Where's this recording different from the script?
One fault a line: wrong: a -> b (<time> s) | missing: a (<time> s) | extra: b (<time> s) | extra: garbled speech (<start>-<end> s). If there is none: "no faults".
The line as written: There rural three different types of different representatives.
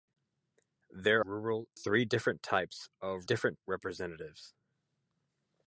no faults